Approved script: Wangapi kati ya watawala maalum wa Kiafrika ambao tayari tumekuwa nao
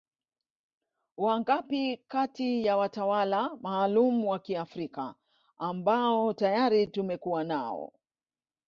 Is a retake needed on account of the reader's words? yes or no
no